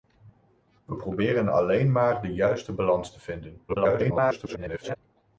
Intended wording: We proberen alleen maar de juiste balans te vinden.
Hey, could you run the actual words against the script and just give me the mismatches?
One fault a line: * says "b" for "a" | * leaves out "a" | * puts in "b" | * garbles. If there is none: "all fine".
* garbles